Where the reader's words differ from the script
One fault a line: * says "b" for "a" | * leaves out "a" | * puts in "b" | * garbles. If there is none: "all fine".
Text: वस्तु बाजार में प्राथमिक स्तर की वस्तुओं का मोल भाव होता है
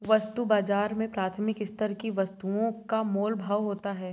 all fine